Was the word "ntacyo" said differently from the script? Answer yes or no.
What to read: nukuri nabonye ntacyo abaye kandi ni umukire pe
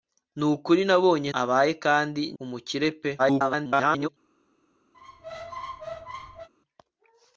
yes